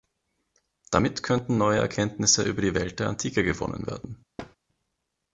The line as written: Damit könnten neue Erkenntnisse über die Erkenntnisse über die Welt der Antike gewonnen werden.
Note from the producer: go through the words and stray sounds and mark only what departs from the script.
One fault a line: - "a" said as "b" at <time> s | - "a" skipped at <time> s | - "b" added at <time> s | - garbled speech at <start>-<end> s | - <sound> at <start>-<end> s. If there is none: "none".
- "Erkenntnisse über die" skipped at 2.7 s
- thud at 4.4-4.6 s